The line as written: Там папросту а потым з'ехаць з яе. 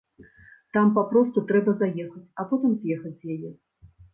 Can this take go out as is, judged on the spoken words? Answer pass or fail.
fail